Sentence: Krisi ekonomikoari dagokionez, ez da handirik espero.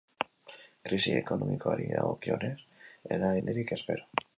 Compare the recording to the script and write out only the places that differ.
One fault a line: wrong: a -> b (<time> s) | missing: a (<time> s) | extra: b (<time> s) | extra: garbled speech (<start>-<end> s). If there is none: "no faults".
no faults